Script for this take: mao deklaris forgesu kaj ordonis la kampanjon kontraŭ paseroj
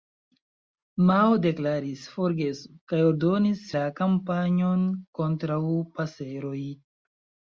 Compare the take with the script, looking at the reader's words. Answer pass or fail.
pass